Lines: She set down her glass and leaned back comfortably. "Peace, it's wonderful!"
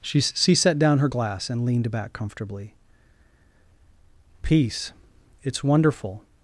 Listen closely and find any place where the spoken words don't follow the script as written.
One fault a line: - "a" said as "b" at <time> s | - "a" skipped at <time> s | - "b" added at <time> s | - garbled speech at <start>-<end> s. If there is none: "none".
- "she" added at 0.2 s